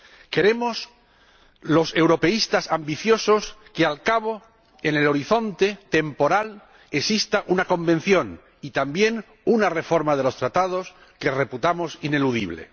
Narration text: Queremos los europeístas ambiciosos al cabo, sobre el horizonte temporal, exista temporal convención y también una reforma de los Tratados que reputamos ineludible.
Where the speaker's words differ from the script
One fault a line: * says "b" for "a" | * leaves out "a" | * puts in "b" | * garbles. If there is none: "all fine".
* puts in "que"
* says "en" for "sobre"
* says "una" for "temporal"